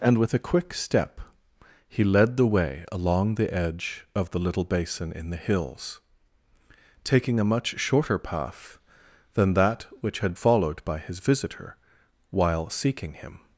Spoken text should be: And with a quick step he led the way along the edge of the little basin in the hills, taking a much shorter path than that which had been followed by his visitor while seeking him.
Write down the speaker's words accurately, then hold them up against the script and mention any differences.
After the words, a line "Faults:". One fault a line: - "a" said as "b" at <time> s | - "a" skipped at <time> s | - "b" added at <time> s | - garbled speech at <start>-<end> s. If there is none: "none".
And with a quick step he led the way along the edge of the little basin in the hills, taking a much shorter path than that which had followed by his visitor while seeking him.
Faults:
- "been" skipped at 10.3 s